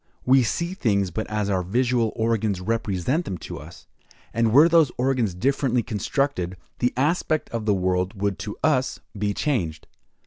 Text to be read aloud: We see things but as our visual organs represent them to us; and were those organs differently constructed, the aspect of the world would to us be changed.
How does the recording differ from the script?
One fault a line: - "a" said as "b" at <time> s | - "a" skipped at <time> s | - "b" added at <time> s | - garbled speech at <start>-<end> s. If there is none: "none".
none